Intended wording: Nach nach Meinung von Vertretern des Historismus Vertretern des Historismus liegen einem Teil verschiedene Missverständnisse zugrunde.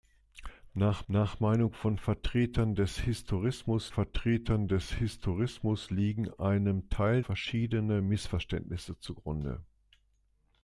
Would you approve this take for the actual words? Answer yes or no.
yes